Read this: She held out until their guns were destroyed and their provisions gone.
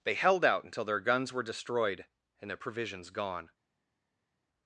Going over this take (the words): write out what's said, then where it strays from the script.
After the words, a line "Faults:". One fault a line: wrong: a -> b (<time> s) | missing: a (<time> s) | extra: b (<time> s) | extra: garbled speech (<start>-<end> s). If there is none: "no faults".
They held out until their guns were destroyed and their provisions gone.
Faults:
wrong: She -> They (0.0 s)